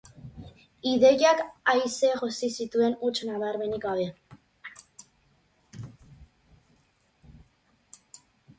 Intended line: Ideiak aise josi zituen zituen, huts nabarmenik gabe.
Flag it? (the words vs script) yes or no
yes